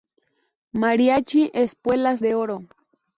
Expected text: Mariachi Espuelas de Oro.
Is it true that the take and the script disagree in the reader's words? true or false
false